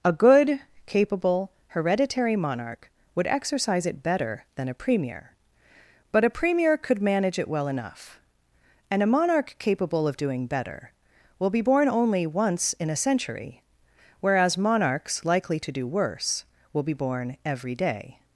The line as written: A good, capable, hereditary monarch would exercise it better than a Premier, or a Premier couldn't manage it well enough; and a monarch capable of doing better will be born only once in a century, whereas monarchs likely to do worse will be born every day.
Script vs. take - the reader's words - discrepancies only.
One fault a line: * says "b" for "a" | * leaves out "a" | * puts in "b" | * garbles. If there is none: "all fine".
* says "but" for "or"
* says "could" for "couldn't"